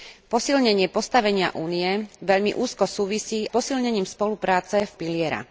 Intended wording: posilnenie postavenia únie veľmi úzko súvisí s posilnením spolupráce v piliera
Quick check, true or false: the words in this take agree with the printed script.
true